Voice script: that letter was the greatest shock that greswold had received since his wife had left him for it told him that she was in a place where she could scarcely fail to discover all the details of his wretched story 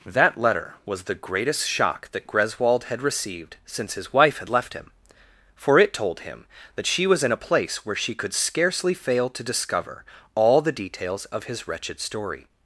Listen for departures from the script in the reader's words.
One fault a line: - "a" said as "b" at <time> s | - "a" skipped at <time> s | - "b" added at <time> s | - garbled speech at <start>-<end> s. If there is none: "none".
none